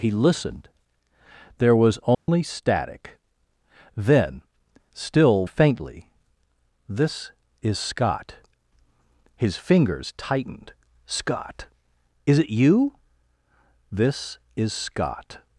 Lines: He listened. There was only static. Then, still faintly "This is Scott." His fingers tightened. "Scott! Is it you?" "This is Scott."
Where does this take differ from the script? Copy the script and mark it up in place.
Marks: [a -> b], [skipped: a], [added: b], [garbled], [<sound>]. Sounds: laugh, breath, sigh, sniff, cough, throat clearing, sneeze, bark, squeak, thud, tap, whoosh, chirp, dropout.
He listened. There was only [dropout] static. Then, still faintly "This is Scott." His fingers tightened. "Scott! Is it you?" "This is Scott."